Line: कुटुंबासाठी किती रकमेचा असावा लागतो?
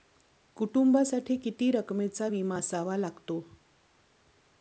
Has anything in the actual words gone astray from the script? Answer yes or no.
yes